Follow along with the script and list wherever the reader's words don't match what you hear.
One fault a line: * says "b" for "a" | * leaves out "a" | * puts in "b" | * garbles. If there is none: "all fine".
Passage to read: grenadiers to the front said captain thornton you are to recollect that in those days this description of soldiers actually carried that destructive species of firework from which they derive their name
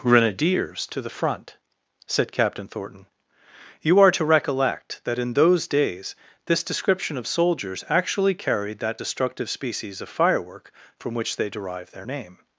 all fine